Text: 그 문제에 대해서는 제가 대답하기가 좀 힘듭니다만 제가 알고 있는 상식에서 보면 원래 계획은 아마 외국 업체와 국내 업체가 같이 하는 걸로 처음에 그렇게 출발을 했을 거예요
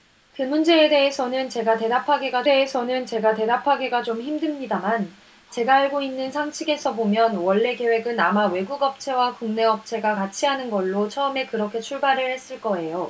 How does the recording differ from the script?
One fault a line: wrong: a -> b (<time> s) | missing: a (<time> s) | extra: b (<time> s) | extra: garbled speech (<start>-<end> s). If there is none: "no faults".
extra: 대해서는 제가 대답하기가 (2.4 s)